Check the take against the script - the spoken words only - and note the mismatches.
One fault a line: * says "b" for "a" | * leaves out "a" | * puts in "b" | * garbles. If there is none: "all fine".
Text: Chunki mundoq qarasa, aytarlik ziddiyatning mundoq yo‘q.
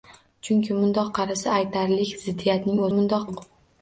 all fine